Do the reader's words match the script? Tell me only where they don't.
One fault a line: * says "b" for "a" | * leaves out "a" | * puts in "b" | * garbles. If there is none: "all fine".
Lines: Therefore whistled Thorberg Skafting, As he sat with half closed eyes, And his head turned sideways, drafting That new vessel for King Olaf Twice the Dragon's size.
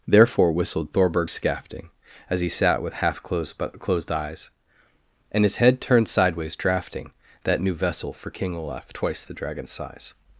* puts in "but closed"